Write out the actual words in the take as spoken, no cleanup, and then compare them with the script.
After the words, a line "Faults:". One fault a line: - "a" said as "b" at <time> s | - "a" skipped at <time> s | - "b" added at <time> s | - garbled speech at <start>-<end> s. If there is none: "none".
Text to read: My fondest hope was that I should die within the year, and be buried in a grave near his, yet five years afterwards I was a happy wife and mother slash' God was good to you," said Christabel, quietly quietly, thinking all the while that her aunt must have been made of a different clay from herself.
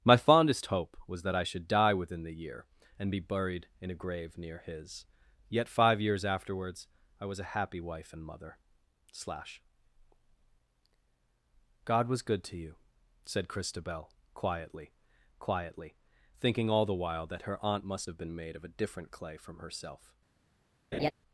My fondest hope was that I should die within the year, and be buried in a grave near his, yet five years afterwards I was a happy wife and mother slash' God was good to you," said Christabel, quietly quietly, thinking all the while that her aunt must have been made of a different clay from herself.
Faults:
none